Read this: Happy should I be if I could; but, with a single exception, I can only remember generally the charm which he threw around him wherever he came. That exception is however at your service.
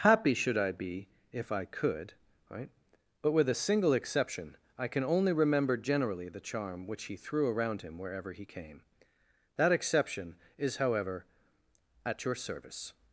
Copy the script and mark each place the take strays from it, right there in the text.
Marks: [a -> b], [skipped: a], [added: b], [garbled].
Happy should I be if I could; [added: right] but, with a single exception, I can only remember generally the charm which he threw around him wherever he came. That exception is however at your service.